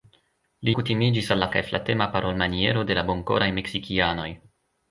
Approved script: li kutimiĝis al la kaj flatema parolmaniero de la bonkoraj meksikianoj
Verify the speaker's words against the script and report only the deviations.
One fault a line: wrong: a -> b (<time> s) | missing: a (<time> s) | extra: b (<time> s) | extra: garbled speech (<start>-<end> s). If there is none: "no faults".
no faults